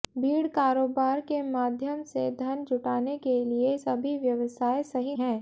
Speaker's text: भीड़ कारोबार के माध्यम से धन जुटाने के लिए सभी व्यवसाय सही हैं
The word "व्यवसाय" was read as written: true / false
true